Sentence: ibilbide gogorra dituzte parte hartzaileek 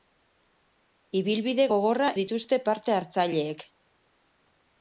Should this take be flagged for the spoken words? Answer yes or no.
no